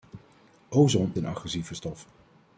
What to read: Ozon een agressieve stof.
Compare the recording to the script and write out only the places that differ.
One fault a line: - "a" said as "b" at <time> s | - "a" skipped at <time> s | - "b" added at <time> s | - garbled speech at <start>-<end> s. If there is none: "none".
none